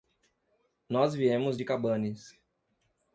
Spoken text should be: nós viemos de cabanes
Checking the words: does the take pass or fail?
pass